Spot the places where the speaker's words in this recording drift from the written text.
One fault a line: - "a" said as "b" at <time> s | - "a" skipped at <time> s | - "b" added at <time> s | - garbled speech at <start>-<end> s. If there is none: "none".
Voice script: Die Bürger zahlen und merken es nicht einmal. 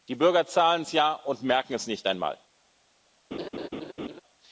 - "es ja" added at 0.8 s